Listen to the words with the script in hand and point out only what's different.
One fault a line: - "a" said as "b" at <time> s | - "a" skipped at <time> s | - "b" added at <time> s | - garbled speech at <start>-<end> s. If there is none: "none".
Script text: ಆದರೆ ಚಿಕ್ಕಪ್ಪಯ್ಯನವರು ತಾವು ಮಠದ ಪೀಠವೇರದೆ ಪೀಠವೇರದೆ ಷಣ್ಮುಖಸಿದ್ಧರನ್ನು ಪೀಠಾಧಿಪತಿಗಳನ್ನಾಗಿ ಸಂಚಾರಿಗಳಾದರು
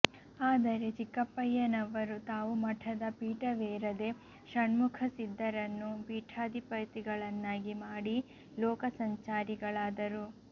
- "ಪೀಠವೇರದೆ" skipped at 4.1 s
- "ಮಾಡಿ ಲೋಕ" added at 7.8 s